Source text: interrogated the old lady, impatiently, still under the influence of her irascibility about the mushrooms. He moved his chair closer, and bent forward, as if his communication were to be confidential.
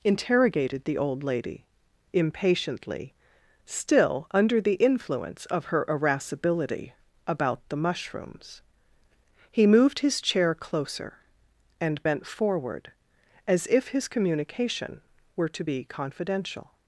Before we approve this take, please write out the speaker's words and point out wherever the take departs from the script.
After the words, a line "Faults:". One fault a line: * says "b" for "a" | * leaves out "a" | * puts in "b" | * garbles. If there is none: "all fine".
interrogated the old lady, impatiently, still under the influence of her irascibility about the mushrooms. He moved his chair closer, and bent forward, as if his communication were to be confidential.
Faults:
all fine